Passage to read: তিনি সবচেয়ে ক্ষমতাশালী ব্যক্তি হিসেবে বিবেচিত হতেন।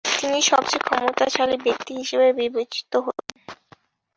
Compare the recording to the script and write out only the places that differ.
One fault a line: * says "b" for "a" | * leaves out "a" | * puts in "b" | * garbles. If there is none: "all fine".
all fine